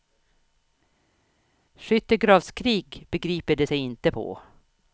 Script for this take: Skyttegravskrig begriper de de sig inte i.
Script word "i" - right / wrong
wrong